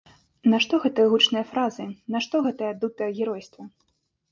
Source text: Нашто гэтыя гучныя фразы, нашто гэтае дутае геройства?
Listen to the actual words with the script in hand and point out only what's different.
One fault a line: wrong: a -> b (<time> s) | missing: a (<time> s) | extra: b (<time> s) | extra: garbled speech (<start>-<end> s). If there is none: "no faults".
no faults